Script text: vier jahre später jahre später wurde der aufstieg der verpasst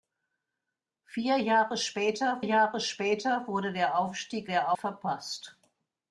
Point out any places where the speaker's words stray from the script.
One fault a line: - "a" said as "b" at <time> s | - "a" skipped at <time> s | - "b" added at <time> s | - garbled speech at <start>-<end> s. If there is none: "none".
none